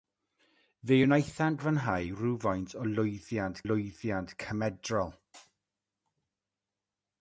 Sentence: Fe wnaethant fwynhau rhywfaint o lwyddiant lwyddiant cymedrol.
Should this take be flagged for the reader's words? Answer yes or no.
no